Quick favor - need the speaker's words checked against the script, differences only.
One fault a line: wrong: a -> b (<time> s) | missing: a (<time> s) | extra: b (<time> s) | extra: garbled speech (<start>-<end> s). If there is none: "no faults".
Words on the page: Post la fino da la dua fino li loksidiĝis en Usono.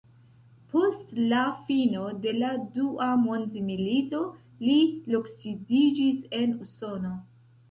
wrong: da -> de (2.2 s)
wrong: fino -> mondmilito (3.2 s)